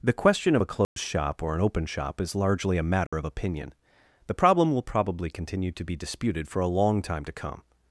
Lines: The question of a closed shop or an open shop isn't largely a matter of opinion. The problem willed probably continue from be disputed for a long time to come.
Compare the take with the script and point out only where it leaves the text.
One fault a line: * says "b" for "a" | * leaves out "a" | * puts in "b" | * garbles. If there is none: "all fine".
* says "is" for "isn't"
* says "will" for "willed"
* says "to" for "from"